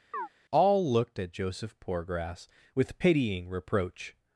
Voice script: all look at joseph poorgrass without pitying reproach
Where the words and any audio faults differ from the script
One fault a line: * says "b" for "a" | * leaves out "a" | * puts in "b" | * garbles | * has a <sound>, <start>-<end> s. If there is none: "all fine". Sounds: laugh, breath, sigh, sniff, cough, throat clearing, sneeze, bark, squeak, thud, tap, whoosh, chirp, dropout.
* has a chirp, 0.1-0.3 s
* says "looked" for "look"
* says "with" for "without"